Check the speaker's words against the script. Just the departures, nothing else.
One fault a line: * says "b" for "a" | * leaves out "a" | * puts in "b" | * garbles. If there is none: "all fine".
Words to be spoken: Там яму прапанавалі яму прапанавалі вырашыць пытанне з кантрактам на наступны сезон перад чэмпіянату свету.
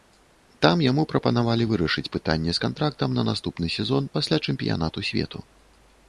* leaves out "яму прапанавалі"
* says "пасля" for "перад"